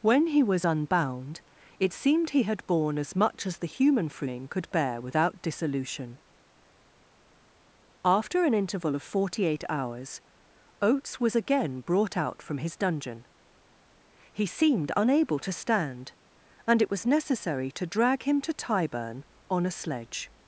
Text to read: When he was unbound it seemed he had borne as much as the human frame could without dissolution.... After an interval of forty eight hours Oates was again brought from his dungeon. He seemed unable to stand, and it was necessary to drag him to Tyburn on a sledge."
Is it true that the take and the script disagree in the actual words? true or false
true